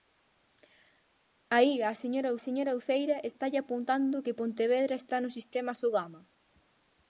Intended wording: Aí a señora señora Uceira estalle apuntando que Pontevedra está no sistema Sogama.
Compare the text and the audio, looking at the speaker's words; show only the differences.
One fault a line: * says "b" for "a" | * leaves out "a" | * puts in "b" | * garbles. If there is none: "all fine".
all fine